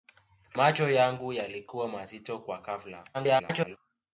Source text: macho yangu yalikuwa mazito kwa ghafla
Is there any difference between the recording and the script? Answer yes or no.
yes